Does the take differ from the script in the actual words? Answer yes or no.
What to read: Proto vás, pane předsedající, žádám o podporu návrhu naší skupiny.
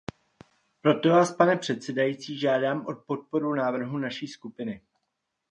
no